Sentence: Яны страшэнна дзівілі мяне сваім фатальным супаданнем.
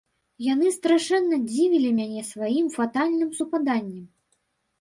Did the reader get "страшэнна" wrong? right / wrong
right